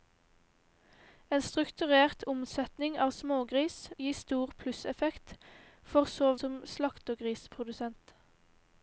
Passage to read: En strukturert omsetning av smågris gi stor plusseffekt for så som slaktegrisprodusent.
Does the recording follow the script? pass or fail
pass